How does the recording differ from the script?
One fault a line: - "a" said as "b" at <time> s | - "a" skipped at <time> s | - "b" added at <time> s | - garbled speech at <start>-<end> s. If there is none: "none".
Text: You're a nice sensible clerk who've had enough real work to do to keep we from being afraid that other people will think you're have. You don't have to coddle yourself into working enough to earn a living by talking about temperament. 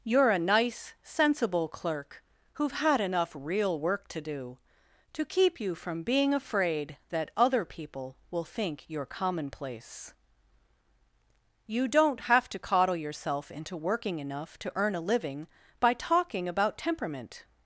- "we" said as "you" at 5.6 s
- "have" said as "commonplace" at 9.1 s